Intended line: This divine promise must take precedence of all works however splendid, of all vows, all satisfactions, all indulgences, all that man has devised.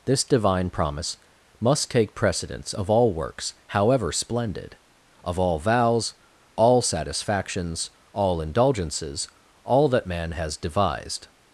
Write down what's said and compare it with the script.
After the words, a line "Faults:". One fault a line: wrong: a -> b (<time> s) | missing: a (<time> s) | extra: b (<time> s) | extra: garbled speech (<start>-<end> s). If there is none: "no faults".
This divine promise must take precedence of all works however splendid, of all vows, all satisfactions, all indulgences, all that man has devised.
Faults:
no faults